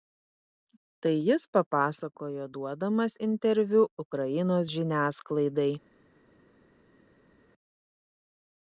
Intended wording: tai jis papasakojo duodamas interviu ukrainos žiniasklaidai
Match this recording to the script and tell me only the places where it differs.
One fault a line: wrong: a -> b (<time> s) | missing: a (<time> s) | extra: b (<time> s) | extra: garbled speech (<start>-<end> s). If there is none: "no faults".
no faults